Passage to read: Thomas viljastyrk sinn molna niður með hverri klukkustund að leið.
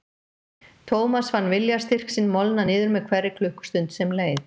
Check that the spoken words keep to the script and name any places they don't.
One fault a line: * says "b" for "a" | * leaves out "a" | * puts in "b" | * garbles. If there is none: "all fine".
* puts in "fann"
* says "sem" for "að"